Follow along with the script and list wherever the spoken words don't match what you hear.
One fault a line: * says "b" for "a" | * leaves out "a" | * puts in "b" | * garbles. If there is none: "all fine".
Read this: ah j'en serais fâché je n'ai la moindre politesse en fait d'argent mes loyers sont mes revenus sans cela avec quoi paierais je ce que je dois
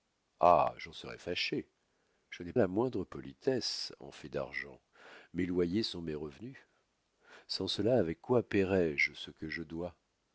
all fine